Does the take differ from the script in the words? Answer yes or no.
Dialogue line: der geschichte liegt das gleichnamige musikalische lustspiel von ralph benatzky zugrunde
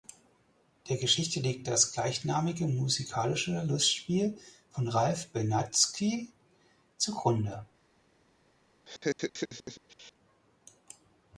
no